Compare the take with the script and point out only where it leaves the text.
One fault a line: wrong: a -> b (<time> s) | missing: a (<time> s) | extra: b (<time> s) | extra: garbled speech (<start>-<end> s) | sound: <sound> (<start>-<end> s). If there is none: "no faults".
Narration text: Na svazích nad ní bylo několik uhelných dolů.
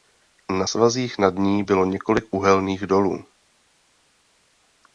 no faults